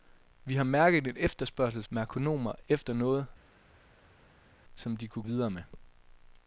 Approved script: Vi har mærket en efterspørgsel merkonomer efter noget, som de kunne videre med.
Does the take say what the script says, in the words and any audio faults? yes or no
yes